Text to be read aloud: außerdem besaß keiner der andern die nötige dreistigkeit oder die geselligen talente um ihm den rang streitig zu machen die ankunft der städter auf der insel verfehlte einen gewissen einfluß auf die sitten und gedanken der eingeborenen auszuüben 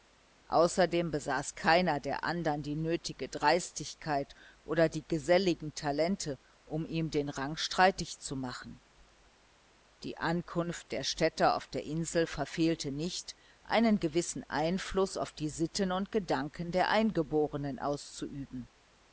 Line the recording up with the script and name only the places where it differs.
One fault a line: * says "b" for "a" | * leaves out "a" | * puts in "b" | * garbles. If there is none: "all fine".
* puts in "nicht"